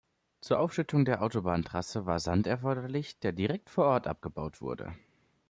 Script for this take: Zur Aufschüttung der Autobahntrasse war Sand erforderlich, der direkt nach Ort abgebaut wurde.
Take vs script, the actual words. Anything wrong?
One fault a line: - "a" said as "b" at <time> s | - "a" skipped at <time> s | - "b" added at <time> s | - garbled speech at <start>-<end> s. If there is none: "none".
- "nach" said as "vor" at 3.7 s